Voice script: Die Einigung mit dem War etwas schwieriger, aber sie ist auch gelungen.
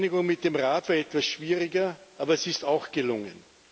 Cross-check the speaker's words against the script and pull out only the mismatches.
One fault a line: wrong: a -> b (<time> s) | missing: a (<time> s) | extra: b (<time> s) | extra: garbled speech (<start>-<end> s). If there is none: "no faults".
extra: Rat (0.6 s)